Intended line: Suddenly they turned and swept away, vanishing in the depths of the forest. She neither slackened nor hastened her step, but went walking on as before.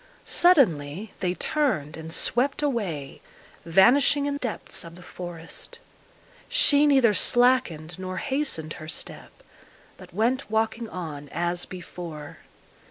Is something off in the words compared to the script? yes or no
yes